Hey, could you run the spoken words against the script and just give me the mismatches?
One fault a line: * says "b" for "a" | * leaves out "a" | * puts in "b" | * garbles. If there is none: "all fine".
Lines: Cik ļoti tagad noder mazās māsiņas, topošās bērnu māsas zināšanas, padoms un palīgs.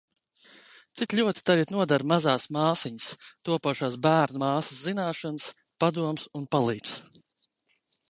all fine